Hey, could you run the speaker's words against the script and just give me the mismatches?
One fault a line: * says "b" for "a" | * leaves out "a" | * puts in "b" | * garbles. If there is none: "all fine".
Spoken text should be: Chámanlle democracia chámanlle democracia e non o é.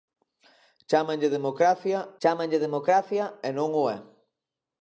all fine